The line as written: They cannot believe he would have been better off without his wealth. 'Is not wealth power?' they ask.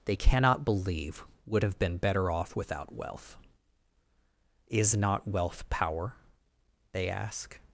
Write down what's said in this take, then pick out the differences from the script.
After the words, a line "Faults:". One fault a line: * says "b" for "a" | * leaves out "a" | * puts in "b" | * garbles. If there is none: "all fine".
They cannot believe would have been better off without wealth. 'Is not wealth power?' they ask.
Faults:
* leaves out "he"
* leaves out "his"